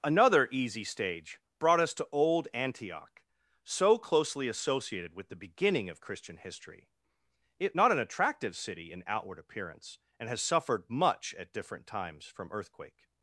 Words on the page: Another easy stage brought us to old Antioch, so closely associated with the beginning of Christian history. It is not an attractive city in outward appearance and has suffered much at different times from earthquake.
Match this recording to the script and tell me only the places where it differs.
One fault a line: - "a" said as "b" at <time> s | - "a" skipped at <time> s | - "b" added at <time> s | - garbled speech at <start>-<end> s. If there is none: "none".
- "is" skipped at 7.8 s